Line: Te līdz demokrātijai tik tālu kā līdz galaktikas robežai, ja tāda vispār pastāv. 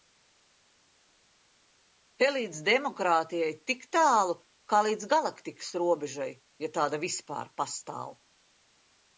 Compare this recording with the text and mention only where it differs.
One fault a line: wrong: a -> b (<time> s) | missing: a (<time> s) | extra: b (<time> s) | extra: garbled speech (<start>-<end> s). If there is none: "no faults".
no faults